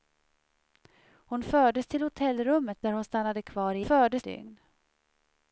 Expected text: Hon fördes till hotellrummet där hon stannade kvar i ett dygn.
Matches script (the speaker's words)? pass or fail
fail